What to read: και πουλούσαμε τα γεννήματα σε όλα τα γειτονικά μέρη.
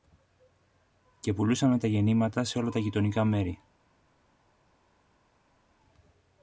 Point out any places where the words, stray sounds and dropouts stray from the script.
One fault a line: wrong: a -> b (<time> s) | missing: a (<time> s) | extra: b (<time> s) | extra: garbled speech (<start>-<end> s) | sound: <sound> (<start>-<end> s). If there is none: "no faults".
no faults